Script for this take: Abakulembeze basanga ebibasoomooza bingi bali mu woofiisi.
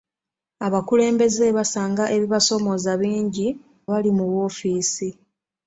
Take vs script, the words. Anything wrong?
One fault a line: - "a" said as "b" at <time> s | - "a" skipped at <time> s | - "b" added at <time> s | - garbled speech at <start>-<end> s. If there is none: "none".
none